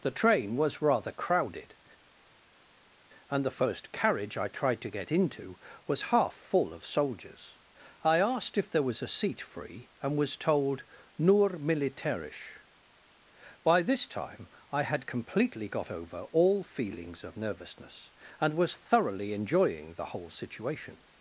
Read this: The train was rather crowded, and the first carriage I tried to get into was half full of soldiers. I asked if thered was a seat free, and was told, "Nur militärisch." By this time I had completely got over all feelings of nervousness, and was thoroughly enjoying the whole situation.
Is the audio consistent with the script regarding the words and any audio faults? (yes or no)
no